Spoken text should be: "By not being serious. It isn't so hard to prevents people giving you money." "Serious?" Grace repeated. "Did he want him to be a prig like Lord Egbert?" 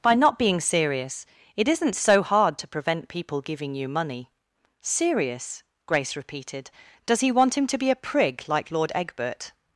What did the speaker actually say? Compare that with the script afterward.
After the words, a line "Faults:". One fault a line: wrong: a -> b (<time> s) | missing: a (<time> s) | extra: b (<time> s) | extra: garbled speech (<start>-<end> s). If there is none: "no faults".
"By not being serious. It isn't so hard to prevent people giving you money." "Serious?" Grace repeated. "Does he want him to be a prig like Lord Egbert?"
Faults:
wrong: prevents -> prevent (2.7 s)
wrong: Did -> Does (7.0 s)